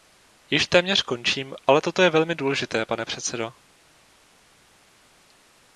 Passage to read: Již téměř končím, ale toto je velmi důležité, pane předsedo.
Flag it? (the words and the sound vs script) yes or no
no